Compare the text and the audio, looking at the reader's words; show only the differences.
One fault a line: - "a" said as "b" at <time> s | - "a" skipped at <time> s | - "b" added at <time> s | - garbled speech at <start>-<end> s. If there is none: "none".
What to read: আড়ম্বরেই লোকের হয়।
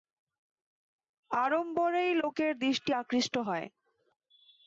- "দৃষ্টি আকৃষ্ট" added at 2.6 s